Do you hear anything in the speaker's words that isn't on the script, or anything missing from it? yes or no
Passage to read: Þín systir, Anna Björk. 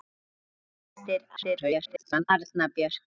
yes